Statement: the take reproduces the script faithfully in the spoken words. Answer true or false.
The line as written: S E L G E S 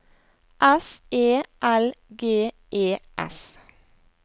true